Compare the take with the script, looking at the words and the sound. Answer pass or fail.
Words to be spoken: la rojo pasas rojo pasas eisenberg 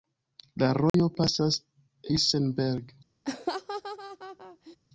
fail